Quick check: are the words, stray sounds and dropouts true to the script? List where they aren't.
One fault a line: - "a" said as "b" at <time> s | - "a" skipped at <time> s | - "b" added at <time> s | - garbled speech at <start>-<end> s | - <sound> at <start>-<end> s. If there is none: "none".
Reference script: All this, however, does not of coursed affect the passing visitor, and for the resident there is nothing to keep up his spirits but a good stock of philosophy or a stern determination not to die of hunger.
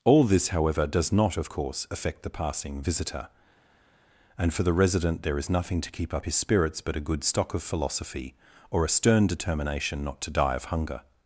- "coursed" said as "course" at 1.5 s